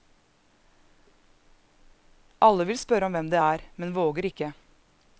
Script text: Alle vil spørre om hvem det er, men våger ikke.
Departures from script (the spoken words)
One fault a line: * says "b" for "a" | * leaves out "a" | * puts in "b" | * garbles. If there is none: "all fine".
all fine